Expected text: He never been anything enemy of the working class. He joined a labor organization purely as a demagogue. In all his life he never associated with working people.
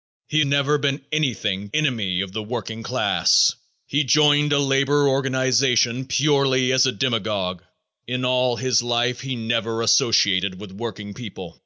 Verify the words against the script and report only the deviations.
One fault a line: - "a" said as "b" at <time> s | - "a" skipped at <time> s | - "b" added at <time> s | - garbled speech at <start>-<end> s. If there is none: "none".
none